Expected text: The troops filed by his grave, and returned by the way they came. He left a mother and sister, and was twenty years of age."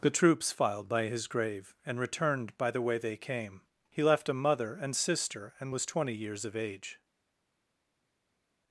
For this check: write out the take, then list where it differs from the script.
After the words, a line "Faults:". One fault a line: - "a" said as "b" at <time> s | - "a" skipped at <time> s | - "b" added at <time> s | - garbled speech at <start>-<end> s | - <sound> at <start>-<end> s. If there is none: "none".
The troops filed by his grave, and returned by the way they came. He left a mother and sister, and was twenty years of age."
Faults:
none